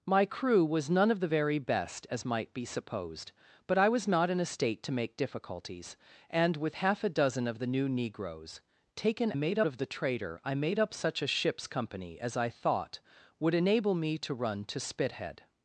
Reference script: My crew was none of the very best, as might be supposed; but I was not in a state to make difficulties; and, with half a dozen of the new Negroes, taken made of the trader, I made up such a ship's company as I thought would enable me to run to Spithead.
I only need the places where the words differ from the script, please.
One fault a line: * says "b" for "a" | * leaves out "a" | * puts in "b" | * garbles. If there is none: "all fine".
all fine